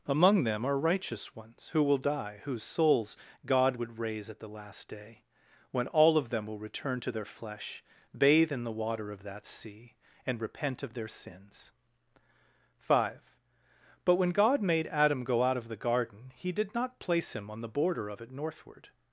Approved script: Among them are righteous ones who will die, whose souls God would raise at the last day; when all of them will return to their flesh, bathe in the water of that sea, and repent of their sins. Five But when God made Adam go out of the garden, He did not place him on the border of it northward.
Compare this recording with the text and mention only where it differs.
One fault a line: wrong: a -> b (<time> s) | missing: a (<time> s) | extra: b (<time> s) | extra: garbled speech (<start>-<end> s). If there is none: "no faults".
no faults